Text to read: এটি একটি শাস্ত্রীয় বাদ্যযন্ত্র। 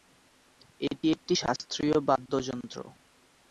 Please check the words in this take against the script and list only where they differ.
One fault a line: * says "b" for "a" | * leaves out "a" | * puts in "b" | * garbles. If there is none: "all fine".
all fine